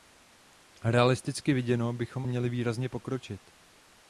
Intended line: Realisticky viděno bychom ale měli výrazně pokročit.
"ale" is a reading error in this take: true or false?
true